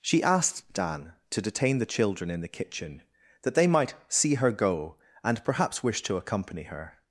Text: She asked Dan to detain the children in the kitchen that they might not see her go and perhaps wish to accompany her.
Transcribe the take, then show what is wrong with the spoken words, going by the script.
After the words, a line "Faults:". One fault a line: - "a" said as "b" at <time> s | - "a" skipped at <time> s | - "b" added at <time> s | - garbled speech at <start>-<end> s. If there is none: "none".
She asked Dan to detain the children in the kitchen that they might see her go and perhaps wish to accompany her.
Faults:
- "not" skipped at 3.9 s